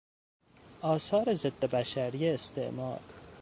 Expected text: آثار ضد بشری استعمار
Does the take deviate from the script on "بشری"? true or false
false